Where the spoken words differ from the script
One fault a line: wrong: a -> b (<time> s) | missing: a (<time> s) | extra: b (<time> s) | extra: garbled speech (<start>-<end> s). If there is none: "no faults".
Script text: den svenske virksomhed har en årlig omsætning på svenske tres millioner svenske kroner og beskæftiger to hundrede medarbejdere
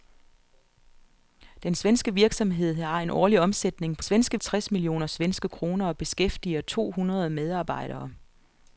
no faults